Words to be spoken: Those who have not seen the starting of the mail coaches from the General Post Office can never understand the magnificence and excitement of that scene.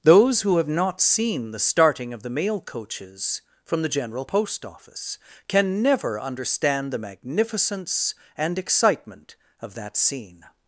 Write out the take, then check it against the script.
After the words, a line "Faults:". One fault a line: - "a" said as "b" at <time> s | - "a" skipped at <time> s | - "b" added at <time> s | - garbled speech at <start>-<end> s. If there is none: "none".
Those who have not seen the starting of the mail coaches from the General Post Office can never understand the magnificence and excitement of that scene.
Faults:
none